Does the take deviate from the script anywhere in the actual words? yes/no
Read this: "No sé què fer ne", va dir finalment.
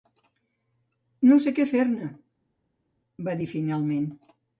no